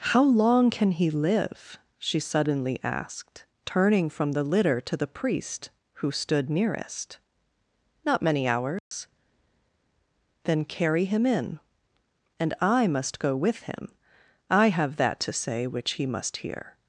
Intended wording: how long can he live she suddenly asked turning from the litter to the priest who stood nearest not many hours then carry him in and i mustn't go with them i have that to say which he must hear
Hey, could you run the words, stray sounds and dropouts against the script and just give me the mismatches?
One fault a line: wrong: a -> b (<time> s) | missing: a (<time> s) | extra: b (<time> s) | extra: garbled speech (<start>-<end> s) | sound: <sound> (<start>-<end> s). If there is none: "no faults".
sound: dropout (8.8-8.9 s)
wrong: mustn't -> must (12.9 s)
wrong: them -> him (13.6 s)